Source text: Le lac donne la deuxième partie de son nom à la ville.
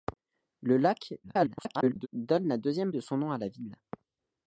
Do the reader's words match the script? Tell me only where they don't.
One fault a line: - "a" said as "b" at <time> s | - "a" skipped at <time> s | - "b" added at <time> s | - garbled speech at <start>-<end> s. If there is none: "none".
- garbled speech at 1.2-2.1 s
- "partie" skipped at 2.9 s